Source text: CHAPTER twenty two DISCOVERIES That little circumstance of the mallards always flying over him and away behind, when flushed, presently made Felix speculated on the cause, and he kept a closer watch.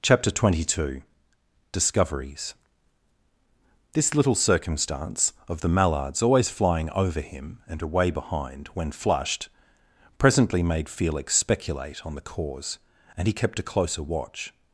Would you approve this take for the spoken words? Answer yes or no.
no